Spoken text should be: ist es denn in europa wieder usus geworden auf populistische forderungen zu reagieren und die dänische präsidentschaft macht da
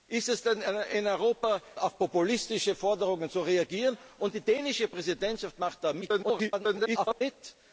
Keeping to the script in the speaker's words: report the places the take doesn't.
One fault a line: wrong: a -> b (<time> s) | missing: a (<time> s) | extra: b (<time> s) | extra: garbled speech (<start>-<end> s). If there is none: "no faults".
missing: wieder usus geworden (1.6 s)
extra: garbled speech (6.0-7.2 s)